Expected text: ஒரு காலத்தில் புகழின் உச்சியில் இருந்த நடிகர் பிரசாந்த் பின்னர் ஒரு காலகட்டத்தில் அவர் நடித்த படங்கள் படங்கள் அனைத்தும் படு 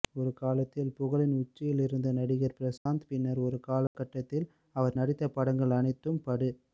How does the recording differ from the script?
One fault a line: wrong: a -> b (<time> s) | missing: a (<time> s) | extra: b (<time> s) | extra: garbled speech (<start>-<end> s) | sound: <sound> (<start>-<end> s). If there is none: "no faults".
sound: dropout (2.8-2.9 s)
sound: dropout (3.9-3.9 s)
missing: படங்கள் (5.8 s)